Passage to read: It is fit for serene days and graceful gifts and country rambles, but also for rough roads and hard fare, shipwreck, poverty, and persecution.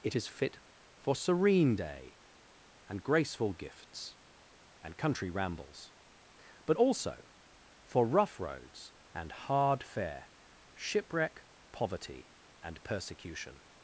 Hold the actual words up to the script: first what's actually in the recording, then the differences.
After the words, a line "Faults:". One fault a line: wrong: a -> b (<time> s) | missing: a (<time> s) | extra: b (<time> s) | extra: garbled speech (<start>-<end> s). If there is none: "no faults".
It is fit for serene day and graceful gifts and country rambles, but also for rough roads and hard fare, shipwreck, poverty, and persecution.
Faults:
wrong: days -> day (1.7 s)